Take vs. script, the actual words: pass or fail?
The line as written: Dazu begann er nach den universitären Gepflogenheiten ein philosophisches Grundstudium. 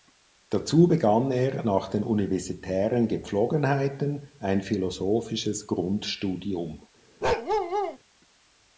pass